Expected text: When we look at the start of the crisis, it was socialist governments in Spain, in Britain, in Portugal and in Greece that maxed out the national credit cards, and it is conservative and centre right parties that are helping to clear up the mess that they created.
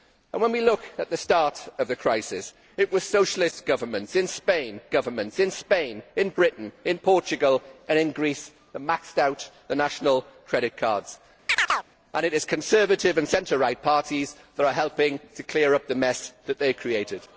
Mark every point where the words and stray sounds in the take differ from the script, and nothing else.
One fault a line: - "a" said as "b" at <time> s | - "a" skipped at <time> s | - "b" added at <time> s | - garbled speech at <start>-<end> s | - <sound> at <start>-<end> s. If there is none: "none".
- "governments in Spain" added at 4.9 s
- chirp at 11.5-11.9 s